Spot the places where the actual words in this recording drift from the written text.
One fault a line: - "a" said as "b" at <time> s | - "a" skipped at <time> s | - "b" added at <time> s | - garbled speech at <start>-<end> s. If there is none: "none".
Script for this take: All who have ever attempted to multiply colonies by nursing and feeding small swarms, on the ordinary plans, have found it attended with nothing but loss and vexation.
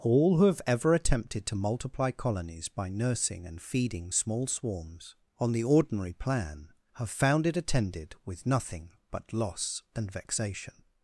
- "plans" said as "plan" at 6.1 s